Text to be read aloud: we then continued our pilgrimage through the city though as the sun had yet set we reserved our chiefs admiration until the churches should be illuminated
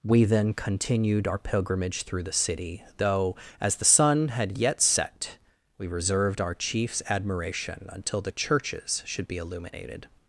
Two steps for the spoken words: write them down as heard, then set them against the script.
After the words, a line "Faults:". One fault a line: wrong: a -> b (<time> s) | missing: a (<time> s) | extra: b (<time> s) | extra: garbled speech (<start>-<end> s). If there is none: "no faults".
we then continued our pilgrimage through the city though as the sun had yet set we reserved our chiefs admiration until the churches should be illuminated
Faults:
no faults